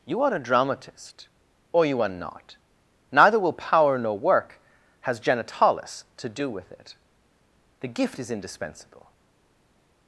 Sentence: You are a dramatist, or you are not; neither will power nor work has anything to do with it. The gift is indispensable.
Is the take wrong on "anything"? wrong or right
wrong